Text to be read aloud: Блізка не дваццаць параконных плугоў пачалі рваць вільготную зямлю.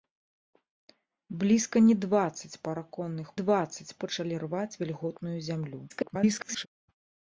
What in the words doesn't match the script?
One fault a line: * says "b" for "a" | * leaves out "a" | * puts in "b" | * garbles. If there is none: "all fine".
* says "дваццаць" for "плугоў"
* garbles